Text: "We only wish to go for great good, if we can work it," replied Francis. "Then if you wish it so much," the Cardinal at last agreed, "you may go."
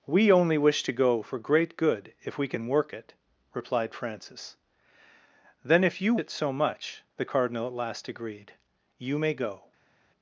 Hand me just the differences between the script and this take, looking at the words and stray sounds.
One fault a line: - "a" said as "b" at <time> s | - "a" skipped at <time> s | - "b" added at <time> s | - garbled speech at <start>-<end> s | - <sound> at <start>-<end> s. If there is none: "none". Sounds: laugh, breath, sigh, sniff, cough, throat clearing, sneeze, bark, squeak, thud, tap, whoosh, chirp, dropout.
- "wish" skipped at 6.2 s